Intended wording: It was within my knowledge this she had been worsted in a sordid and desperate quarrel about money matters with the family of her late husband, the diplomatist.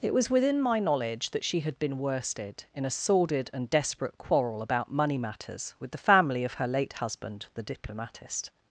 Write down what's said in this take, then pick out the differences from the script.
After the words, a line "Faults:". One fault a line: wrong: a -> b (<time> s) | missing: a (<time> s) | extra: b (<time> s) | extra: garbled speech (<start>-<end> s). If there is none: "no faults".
It was within my knowledge that she had been worsted in a sordid and desperate quarrel about money matters with the family of her late husband, the diplomatist.
Faults:
wrong: this -> that (1.3 s)